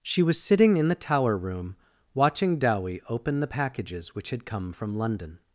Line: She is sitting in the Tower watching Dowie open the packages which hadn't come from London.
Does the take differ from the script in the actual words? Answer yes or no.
yes